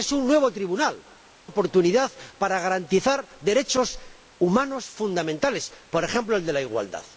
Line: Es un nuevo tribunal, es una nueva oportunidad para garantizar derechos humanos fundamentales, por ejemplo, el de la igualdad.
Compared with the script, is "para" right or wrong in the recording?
right